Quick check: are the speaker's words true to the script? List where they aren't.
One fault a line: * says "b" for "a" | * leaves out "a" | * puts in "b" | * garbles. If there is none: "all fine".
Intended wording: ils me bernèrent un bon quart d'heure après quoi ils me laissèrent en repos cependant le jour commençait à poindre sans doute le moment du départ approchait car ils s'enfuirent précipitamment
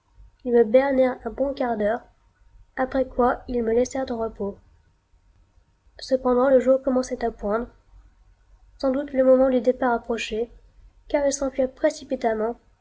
all fine